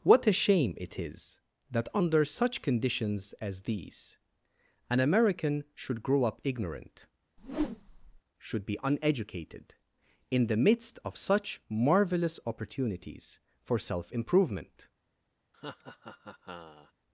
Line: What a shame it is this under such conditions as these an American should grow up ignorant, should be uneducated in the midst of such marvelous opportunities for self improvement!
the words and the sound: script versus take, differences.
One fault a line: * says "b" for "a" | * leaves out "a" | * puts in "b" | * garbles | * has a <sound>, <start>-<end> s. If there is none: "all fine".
* says "that" for "this"
* has a whoosh, 7.4-8.2 s
* has a laugh, 15.5-16.9 s